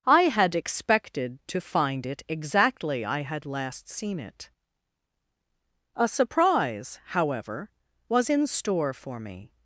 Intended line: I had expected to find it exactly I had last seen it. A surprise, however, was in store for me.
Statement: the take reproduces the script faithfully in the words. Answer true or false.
true